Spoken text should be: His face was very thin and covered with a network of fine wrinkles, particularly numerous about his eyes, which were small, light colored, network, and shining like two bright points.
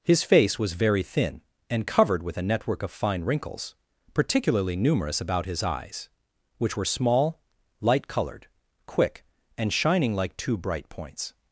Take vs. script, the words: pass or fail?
fail